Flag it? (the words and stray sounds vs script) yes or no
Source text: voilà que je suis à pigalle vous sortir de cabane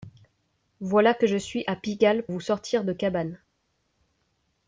no